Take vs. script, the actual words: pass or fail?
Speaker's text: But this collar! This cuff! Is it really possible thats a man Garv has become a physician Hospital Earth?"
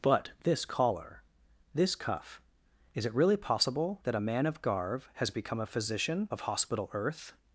fail